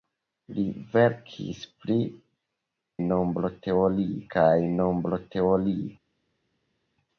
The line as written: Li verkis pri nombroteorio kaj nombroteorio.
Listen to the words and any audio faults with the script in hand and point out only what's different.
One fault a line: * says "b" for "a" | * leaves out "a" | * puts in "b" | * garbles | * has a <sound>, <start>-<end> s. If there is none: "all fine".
all fine